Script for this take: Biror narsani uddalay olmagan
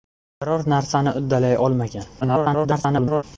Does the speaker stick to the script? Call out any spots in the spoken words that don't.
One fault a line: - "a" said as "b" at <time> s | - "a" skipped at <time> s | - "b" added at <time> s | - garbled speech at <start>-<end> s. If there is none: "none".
- garbled speech at 2.2-3.2 s